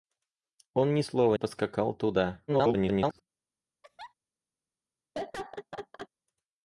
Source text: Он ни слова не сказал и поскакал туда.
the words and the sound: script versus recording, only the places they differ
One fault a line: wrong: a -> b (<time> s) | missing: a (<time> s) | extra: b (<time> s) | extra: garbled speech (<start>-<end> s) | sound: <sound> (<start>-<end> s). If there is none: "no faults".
missing: не сказал и (1.3 s)
extra: garbled speech (2.5-3.2 s)
sound: laugh (3.8-4.1 s)
sound: laugh (5.1-6.1 s)